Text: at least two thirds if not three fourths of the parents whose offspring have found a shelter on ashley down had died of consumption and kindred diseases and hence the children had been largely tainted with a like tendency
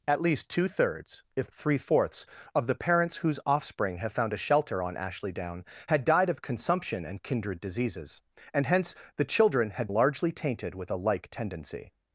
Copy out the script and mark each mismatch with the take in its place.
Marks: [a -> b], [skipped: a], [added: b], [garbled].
at least two thirds if [skipped: not] three fourths of the parents whose offspring have found a shelter on ashley down had died of consumption and kindred diseases and hence the children had [skipped: been] largely tainted with a like tendency